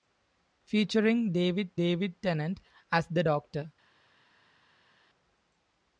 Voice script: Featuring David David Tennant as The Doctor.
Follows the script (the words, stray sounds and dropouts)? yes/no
yes